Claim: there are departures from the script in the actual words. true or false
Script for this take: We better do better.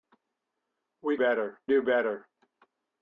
false